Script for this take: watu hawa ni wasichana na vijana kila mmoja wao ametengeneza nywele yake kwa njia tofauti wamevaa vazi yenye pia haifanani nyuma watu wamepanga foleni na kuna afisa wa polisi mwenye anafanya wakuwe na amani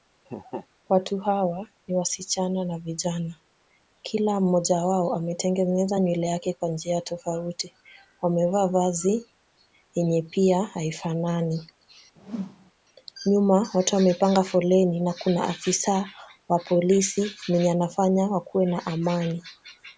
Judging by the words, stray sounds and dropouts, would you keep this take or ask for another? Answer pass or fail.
fail